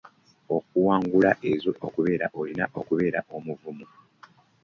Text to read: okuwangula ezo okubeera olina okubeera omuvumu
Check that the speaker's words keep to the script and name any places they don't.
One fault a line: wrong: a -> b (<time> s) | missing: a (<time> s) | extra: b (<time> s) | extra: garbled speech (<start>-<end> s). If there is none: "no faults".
no faults